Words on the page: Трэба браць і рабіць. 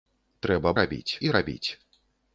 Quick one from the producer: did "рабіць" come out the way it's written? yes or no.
yes